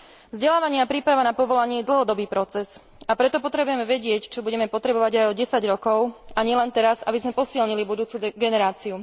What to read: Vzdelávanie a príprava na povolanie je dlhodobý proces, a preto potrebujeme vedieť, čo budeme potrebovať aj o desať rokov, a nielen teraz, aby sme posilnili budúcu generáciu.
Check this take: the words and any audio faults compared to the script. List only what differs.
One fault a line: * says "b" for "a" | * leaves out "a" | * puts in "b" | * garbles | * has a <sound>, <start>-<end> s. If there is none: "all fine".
all fine